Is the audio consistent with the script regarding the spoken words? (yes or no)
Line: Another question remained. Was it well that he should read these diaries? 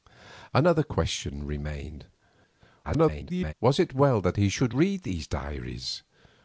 no